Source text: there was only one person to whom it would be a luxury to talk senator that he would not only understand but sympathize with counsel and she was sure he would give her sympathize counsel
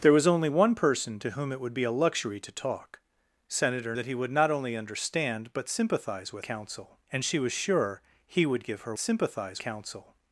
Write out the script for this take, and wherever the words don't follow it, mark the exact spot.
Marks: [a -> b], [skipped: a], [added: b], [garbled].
there was only one person to whom it would be a luxury to talk senator that he would not only understand but sympathize with counsel and she was sure he would give her sympathize counsel